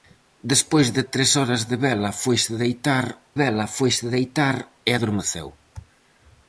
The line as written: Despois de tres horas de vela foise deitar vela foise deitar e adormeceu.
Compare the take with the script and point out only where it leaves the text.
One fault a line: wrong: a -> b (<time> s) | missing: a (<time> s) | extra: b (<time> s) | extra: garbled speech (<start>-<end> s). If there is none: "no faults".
no faults